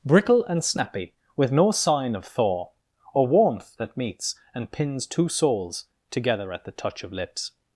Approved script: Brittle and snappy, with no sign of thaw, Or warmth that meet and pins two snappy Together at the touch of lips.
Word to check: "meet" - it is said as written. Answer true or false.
false